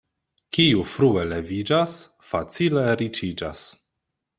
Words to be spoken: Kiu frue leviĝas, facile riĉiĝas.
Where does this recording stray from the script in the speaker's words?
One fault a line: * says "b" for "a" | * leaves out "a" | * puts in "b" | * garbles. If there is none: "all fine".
all fine